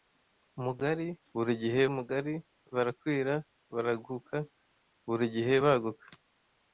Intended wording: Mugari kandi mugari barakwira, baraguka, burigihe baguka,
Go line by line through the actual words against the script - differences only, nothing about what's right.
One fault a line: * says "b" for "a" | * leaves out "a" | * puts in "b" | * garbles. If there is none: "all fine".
* says "burigihe" for "kandi"